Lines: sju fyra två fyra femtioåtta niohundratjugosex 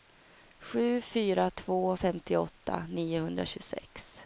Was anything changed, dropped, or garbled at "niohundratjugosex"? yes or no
no